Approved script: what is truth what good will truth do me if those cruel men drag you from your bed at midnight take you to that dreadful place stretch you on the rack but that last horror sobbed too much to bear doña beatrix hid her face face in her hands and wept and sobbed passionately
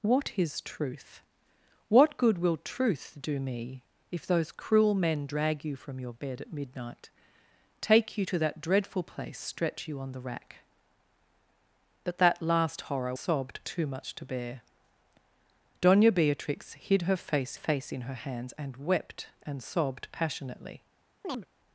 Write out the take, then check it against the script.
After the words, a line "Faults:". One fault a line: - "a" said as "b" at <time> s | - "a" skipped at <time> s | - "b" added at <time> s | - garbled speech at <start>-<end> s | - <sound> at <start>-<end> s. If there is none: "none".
what is truth what good will truth do me if those cruel men drag you from your bed at midnight take you to that dreadful place stretch you on the rack but that last horror sobbed too much to bear doña beatrix hid her face face in her hands and wept and sobbed passionately
Faults:
- chirp at 21.2-21.5 s